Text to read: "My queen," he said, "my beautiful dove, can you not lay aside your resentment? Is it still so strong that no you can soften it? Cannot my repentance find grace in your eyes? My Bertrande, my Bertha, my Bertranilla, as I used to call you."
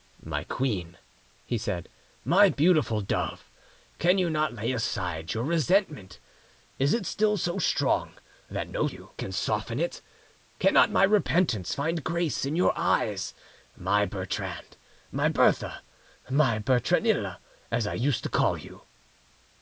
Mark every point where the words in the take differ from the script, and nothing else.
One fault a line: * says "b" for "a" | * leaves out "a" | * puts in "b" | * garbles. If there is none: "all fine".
all fine